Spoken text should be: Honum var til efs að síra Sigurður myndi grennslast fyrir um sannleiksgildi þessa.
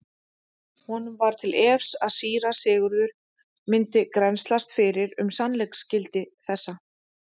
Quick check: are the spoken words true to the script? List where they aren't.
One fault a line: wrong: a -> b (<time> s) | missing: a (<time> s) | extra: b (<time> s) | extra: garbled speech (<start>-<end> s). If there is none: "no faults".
no faults